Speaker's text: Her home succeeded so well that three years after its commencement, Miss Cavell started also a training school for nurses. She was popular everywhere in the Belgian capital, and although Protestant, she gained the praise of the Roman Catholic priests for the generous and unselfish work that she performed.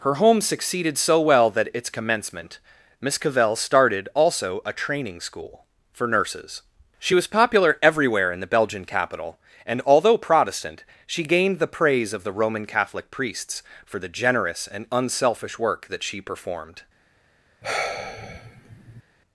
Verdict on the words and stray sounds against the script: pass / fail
fail